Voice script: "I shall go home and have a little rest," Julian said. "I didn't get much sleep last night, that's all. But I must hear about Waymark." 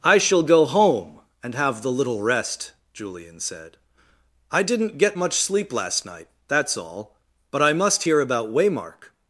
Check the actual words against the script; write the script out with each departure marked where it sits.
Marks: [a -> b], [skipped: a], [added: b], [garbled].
"I shall go home and have [a -> the] little rest," Julian said. "I didn't get much sleep last night, that's all. But I must hear about Waymark."